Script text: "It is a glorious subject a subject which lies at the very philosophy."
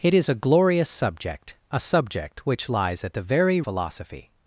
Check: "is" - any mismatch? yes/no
no